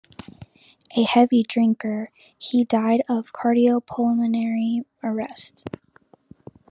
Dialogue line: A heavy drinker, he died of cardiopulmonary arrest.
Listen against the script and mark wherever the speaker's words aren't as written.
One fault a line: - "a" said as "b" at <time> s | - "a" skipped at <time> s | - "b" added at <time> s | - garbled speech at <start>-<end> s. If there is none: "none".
none